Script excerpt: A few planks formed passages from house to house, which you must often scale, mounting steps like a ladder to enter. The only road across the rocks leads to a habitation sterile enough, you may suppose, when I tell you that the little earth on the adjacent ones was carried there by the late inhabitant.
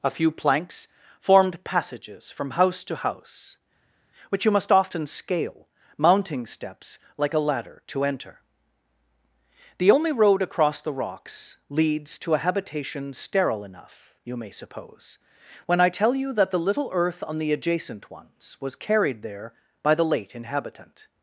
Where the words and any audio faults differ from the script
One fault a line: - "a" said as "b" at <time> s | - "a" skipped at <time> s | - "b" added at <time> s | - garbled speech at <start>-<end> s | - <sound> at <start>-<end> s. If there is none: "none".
none